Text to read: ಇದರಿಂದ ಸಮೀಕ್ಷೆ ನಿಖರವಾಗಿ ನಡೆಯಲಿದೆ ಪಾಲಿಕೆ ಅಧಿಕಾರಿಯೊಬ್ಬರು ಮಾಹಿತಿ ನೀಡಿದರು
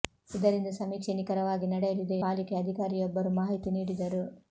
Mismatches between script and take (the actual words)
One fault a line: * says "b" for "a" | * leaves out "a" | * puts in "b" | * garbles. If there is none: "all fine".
all fine